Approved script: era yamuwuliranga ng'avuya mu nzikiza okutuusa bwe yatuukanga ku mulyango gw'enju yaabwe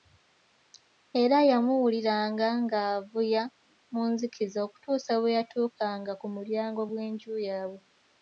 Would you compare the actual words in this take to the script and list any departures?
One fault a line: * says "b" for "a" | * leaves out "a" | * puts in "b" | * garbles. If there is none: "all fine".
all fine